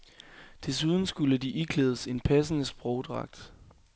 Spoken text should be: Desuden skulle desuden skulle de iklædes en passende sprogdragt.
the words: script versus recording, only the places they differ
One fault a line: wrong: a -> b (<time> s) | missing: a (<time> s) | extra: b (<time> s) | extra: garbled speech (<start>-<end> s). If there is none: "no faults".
missing: desuden skulle (1.4 s)